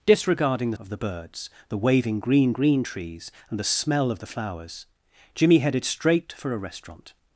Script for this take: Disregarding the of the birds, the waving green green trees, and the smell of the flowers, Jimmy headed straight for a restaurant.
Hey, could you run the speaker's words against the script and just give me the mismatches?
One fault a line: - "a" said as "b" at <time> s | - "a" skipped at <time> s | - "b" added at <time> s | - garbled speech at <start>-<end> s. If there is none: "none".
none